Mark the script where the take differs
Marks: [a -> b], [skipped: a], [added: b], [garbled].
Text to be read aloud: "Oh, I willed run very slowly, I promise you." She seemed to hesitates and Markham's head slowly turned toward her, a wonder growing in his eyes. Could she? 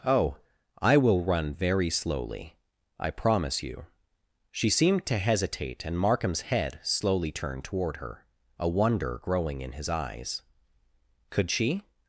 "Oh, I [willed -> will] run very slowly, I promise you." She seemed to [hesitates -> hesitate] and Markham's head slowly turned toward her, a wonder growing in his eyes. Could she?